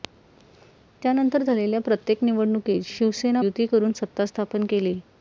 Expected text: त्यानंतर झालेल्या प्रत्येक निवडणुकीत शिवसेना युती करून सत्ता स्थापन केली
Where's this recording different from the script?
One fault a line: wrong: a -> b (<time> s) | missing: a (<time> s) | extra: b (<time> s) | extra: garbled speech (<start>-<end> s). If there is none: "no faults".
no faults